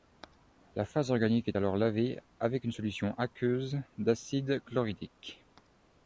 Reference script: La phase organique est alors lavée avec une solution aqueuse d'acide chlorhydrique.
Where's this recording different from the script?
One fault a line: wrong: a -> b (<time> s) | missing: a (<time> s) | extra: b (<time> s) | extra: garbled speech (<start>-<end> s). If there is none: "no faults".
no faults